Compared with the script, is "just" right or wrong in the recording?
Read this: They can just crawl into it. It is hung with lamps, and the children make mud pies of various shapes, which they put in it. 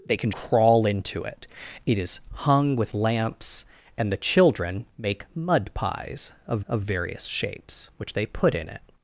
wrong